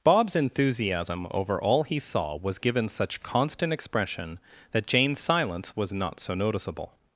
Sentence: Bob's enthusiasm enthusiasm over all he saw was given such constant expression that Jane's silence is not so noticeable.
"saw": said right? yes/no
yes